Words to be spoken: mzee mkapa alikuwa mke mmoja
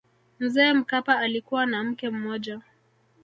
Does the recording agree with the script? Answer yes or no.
no